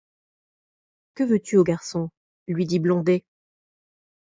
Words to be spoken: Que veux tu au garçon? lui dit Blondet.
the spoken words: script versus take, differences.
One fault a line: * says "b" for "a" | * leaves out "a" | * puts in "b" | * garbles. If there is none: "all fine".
all fine